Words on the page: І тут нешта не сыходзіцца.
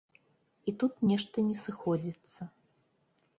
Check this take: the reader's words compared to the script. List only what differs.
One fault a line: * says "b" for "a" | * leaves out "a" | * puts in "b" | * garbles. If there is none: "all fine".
all fine